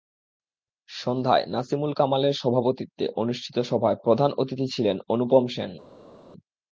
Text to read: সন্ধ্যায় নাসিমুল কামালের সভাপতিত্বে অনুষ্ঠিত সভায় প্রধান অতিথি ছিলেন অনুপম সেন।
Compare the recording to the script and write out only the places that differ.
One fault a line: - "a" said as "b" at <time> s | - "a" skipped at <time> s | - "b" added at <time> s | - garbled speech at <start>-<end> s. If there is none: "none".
none